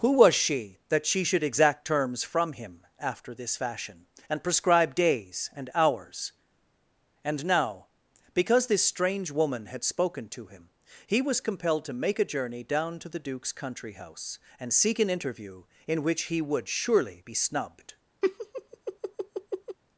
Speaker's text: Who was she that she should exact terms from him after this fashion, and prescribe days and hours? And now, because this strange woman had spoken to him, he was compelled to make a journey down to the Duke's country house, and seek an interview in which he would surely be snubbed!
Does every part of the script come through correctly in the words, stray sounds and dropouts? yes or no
no